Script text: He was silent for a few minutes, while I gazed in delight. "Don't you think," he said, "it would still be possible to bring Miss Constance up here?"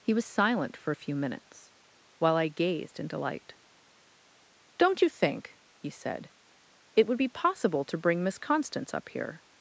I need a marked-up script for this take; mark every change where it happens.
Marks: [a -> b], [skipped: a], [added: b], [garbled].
He was silent for a few minutes, while I gazed in delight. "Don't you think," he said, "it would [skipped: still] be possible to bring Miss Constance up here?"